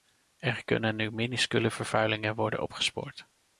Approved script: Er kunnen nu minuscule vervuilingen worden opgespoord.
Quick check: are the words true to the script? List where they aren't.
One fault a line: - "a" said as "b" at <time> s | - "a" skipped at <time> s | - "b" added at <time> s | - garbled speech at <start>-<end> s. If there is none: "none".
none